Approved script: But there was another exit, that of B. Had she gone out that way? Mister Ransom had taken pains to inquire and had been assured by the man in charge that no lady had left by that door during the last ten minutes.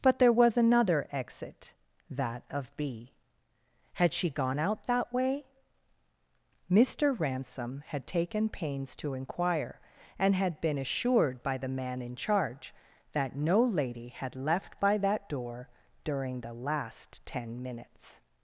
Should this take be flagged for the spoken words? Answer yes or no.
no